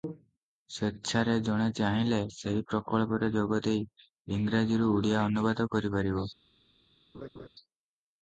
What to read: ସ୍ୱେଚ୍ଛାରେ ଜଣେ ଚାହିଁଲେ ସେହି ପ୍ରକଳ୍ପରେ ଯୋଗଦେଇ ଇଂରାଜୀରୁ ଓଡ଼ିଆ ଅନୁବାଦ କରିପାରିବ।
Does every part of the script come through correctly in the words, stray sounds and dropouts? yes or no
no